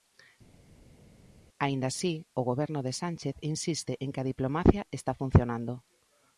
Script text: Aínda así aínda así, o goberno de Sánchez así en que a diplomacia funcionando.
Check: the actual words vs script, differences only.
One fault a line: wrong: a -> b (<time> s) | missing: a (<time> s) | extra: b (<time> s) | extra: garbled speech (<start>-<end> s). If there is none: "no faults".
missing: aínda así (2.1 s)
wrong: así -> insiste (3.5 s)
extra: está (4.9 s)